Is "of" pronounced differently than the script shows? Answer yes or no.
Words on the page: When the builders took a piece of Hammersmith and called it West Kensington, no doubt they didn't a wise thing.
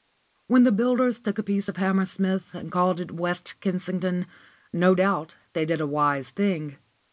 no